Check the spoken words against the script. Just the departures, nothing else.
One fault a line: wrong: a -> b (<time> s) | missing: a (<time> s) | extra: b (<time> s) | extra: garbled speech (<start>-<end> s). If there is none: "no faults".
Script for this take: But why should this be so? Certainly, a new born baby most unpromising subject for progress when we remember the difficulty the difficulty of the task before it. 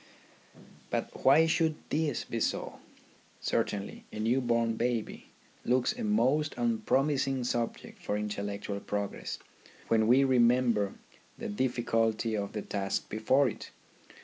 extra: looks a (5.6 s)
extra: intellectual (8.2 s)
missing: the difficulty (12.3 s)